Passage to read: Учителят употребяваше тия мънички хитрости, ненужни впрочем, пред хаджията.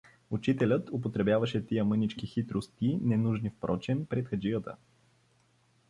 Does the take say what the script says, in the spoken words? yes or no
yes